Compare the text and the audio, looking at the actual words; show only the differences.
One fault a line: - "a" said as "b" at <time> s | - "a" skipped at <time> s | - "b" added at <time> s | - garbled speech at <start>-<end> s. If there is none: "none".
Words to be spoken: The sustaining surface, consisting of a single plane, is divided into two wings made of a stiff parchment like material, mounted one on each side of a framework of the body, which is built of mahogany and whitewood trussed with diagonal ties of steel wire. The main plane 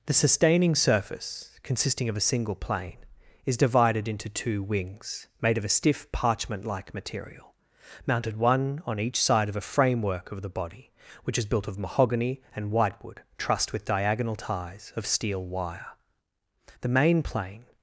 none